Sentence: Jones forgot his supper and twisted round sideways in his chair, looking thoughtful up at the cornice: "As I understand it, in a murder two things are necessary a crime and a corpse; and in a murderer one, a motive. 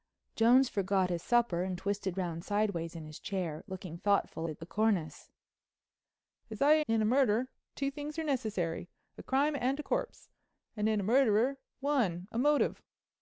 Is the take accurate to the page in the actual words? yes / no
no